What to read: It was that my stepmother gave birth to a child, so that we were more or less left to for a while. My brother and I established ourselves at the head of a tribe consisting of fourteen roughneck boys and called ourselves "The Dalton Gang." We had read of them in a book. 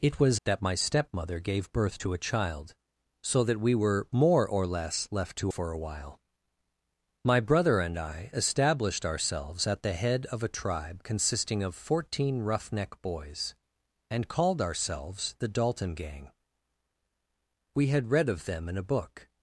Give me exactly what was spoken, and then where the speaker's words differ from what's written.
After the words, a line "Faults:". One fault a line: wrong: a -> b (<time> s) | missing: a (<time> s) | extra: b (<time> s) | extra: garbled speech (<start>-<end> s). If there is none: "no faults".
It was that my stepmother gave birth to a child, so that we were more or less left to for a while. My brother and I established ourselves at the head of a tribe consisting of fourteen roughneck boys and called ourselves "The Dalton Gang." We had read of them in a book.
Faults:
no faults